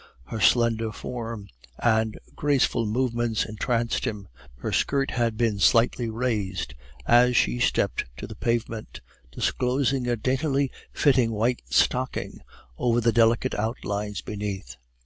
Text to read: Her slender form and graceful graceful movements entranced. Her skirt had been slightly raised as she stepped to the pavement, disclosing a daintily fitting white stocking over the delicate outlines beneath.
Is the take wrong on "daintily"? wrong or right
right